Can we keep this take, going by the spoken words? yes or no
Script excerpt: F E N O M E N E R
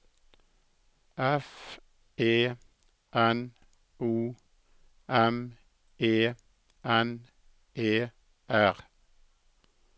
yes